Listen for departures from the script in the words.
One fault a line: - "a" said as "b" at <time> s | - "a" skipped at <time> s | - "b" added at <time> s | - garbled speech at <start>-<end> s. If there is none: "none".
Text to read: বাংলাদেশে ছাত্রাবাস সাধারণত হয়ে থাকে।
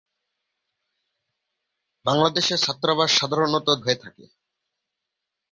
none